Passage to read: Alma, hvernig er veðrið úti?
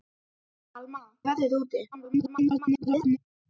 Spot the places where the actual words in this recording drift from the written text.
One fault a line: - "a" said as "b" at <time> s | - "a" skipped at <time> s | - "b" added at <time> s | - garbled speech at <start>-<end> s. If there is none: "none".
- "hvernig" skipped at 1.0 s
- garbled speech at 1.9-3.2 s